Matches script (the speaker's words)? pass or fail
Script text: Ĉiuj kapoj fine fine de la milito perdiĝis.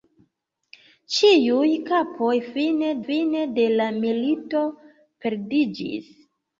pass